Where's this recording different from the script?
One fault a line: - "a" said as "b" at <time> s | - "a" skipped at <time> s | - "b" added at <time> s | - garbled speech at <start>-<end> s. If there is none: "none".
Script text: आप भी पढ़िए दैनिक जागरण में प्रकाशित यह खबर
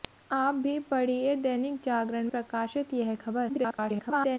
- "में" skipped at 2.3 s
- garbled speech at 3.5-4.4 s